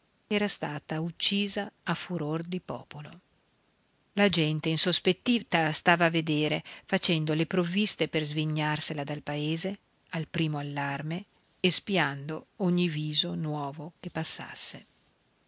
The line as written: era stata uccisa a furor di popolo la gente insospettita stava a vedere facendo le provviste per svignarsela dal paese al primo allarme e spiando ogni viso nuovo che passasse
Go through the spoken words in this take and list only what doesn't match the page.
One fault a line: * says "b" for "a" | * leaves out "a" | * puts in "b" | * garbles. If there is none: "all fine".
all fine